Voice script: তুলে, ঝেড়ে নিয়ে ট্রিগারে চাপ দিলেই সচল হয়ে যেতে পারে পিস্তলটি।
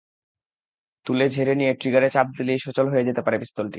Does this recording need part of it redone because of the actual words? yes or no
no